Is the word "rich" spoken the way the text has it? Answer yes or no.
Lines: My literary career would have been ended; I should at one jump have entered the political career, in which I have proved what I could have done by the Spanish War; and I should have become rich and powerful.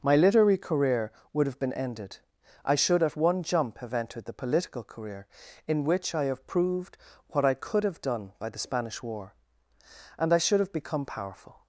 no